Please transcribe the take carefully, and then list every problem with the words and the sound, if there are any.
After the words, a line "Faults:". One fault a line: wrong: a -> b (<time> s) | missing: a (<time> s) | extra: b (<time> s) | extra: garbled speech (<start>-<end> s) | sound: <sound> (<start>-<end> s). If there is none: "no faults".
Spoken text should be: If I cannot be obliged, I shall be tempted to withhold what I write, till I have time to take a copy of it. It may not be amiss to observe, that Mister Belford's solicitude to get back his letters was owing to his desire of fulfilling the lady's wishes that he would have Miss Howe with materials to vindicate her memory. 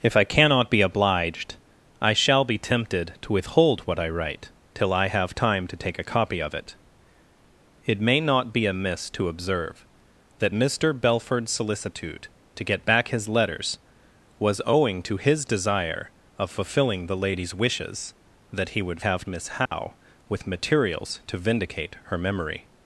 If I cannot be obliged, I shall be tempted to withhold what I write, till I have time to take a copy of it. It may not be amiss to observe, that Mister Belford's solicitude to get back his letters was owing to his desire of fulfilling the lady's wishes that he would have Miss Howe with materials to vindicate her memory.
Faults:
sound: dropout (19.7-19.7 s)